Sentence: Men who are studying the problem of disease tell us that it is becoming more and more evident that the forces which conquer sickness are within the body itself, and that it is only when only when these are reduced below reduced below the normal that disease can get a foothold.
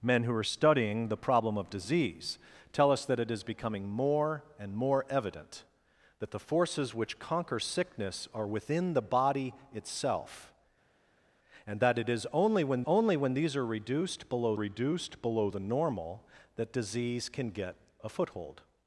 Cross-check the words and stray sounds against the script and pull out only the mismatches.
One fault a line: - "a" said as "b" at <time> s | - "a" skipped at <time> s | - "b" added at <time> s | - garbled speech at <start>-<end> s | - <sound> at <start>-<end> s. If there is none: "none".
none